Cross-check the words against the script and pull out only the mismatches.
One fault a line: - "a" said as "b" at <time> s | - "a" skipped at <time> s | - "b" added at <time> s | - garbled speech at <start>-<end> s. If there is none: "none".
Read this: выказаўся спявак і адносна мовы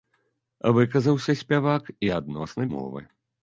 none